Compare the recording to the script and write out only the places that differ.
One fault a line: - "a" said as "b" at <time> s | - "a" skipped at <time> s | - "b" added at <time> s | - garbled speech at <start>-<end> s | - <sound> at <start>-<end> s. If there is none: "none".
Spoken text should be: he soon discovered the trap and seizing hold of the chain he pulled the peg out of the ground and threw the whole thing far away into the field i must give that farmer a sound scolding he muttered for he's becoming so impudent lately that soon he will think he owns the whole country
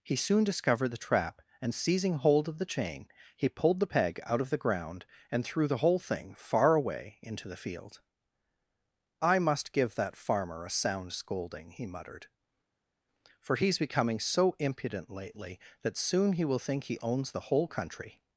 none